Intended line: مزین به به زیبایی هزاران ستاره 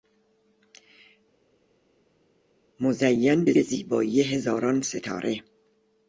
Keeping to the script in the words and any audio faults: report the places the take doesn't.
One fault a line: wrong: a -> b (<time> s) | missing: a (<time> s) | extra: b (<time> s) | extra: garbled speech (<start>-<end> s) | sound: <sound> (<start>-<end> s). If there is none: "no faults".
no faults